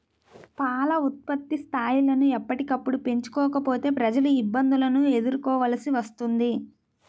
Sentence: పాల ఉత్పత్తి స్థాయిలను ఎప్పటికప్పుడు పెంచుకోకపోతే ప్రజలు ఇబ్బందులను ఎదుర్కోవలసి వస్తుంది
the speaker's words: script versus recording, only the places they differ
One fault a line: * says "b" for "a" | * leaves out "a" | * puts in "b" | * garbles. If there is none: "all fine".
all fine